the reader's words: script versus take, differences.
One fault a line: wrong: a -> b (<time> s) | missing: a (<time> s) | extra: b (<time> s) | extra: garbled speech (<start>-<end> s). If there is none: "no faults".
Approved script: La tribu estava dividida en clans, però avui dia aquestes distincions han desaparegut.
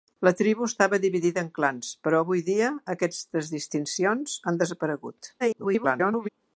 extra: garbled speech (5.4-6.3 s)